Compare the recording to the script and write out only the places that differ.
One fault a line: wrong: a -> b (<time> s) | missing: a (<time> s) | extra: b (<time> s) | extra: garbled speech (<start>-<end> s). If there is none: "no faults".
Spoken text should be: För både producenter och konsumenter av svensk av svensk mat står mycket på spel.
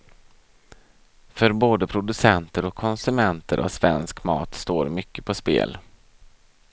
missing: av svensk (4.2 s)